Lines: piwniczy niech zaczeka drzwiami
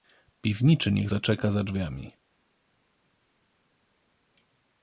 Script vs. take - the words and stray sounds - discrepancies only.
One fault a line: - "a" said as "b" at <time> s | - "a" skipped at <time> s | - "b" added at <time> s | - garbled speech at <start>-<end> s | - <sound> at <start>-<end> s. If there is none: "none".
- "za" added at 1.5 s